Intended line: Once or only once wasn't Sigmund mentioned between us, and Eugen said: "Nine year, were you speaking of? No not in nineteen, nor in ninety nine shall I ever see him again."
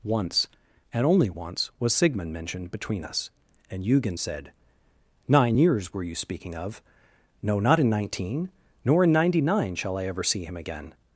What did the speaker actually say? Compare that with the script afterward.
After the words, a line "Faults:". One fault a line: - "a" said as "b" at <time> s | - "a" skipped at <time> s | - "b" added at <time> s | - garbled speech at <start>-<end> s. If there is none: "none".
Once and only once was Sigmund mentioned between us, and Eugen said: "Nine years, were you speaking of? No not in nineteen, nor in ninety nine shall I ever see him again."
Faults:
- "or" said as "and" at 0.9 s
- "wasn't" said as "was" at 1.8 s
- "year" said as "years" at 5.6 s